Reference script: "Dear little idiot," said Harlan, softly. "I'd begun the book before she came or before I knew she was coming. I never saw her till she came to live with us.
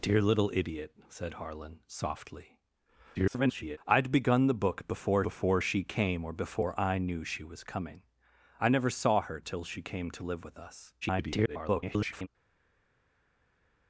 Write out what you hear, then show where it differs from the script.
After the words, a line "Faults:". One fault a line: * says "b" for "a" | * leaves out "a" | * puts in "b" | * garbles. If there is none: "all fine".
"Dear little idiot," said Harlan, softly. [garbled] "I'd begun the book before before she came or before I knew she was coming. I never saw her till she came to live with us. [garbled]
Faults:
* garbles
* puts in "before"
* garbles